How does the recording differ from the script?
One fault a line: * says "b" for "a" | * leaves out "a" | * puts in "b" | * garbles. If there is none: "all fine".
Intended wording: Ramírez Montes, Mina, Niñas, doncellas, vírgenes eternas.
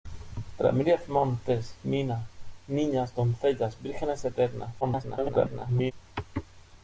* garbles